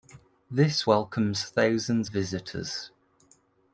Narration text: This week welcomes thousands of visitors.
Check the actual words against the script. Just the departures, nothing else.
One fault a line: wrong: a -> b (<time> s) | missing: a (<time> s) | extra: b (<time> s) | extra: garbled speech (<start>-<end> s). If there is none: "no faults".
missing: week (0.9 s)
missing: of (2.1 s)